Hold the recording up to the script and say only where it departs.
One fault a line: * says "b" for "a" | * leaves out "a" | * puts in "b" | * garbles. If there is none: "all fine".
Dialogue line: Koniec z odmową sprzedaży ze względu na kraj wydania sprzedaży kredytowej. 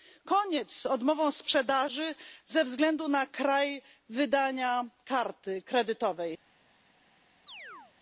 * says "karty" for "sprzedaży"